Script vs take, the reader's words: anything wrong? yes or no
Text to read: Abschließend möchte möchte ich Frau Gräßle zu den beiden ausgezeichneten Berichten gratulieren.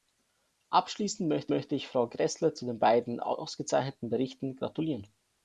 no